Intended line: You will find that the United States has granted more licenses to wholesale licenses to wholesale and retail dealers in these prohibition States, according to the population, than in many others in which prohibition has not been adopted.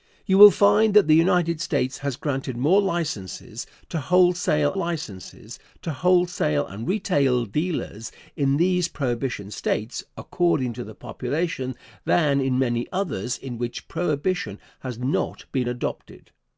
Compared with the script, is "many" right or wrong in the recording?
right